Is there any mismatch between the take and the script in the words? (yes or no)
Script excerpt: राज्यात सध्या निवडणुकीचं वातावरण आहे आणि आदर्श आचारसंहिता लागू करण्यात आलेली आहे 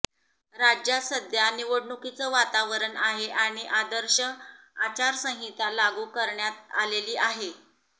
no